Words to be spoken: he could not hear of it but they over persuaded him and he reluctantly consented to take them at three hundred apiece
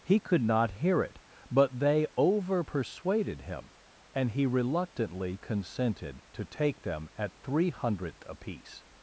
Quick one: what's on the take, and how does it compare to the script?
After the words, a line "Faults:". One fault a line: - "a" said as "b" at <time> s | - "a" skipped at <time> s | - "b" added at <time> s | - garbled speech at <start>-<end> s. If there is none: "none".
he could not hear it but they over persuaded him and he reluctantly consented to take them at three hundredth apiece
Faults:
- "of" skipped at 1.0 s
- "hundred" said as "hundredth" at 7.7 s